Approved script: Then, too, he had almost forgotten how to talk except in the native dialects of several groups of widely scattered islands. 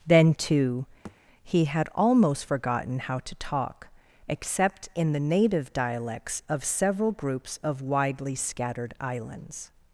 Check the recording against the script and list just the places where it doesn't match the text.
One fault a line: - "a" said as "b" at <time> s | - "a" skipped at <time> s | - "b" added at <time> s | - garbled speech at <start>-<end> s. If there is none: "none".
none